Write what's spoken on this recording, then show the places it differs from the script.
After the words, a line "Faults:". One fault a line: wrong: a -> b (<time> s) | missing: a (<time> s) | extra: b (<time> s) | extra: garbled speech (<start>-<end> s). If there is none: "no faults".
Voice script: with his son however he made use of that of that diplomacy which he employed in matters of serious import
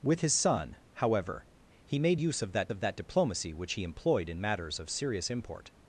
with his son however he made use of that of that diplomacy which he employed in matters of serious import
Faults:
no faults